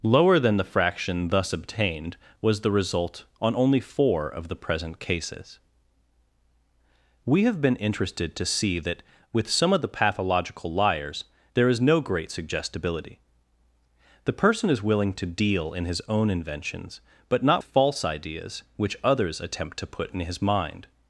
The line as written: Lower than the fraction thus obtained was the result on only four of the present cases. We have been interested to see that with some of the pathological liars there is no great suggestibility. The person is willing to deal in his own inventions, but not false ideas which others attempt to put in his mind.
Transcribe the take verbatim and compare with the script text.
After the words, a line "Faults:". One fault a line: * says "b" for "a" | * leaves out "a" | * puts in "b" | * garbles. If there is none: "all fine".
Lower than the fraction thus obtained was the result on only four of the present cases. We have been interested to see that with some of the pathological liars there is no great suggestibility. The person is willing to deal in his own inventions, but not false ideas which others attempt to put in his mind.
Faults:
all fine